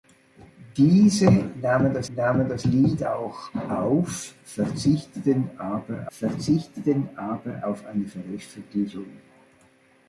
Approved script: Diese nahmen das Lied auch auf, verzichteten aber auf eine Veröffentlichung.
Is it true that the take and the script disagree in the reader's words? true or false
true